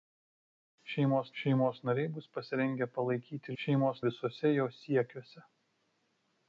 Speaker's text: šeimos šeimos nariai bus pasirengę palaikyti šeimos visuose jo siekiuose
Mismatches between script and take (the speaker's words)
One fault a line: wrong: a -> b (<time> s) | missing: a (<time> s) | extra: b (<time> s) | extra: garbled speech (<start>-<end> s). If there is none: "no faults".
no faults